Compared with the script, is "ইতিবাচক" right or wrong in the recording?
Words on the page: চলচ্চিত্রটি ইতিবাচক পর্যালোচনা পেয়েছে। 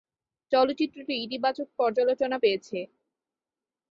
right